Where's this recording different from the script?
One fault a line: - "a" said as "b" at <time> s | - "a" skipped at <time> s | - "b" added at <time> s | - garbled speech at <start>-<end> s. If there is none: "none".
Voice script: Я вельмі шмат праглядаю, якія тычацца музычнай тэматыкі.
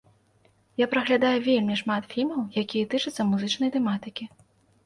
- "праглядаю" added at 0.9 s
- "праглядаю" said as "фільмаў" at 2.1 s